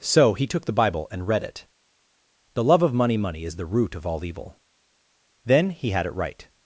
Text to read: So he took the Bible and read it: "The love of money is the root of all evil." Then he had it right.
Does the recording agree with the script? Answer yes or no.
no